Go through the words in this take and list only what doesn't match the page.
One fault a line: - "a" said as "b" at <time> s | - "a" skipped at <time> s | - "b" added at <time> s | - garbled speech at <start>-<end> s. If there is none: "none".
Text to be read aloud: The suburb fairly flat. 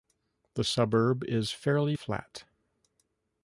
- "is" added at 1.2 s